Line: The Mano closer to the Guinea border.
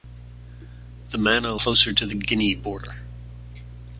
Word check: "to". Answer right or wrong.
right